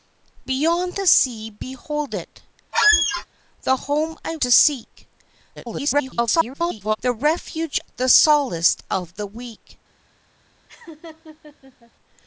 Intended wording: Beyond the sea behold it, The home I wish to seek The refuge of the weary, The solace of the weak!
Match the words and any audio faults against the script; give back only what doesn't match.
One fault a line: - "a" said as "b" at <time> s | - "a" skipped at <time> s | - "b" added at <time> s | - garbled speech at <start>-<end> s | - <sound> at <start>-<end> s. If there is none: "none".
- squeak at 2.7-3.3 s
- "wish" skipped at 4.4 s
- garbled speech at 5.6-7.0 s
- "of the weary" skipped at 7.8 s
- laugh at 10.7-11.9 s